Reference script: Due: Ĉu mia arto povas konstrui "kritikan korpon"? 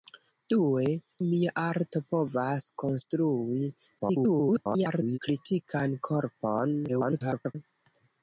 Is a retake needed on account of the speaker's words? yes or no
yes